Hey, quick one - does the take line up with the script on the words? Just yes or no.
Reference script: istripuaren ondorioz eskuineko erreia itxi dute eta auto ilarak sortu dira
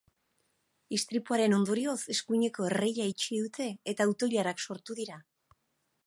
yes